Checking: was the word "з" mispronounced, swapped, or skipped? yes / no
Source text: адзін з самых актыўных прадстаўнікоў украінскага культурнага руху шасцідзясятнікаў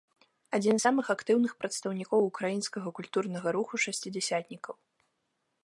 no